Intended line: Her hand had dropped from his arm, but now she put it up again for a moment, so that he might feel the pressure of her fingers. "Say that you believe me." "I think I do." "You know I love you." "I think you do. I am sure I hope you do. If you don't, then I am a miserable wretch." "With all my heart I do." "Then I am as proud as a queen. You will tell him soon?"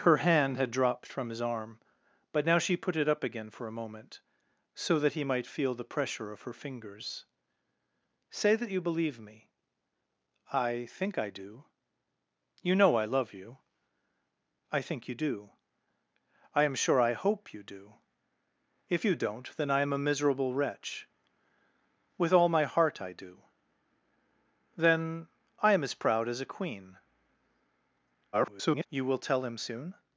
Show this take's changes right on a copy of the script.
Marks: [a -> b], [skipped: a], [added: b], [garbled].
Her hand had dropped from his arm, but now she put it up again for a moment, so that he might feel the pressure of her fingers. "Say that you believe me." "I think I do." "You know I love you." "I think you do. I am sure I hope you do. If you don't, then I am a miserable wretch." "With all my heart I do." "Then I am as proud as a queen. [garbled] You will tell him soon?"